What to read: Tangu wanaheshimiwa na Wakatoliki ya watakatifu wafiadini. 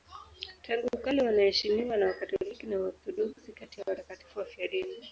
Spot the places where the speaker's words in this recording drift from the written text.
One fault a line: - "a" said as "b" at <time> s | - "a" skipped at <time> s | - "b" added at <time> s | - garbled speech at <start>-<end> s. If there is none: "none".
- "kale" added at 1.0 s
- "na Waorthodoksi kati" added at 2.7 s